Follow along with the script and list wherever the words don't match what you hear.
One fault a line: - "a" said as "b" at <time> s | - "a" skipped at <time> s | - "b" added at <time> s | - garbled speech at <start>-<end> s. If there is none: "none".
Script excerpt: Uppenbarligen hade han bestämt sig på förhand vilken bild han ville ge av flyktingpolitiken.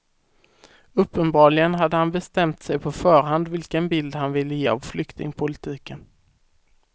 none